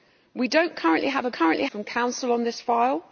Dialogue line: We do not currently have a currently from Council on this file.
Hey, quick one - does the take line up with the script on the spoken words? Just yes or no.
yes